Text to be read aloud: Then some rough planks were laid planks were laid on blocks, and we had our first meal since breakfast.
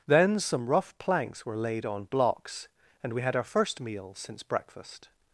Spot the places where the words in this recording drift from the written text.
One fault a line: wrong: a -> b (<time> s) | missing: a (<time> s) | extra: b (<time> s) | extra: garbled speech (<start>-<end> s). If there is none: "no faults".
missing: planks were laid (1.9 s)